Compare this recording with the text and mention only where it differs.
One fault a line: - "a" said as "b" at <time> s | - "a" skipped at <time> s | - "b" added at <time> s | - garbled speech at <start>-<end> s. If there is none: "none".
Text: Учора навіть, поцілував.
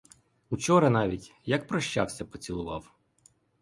- "як прощався" added at 1.4 s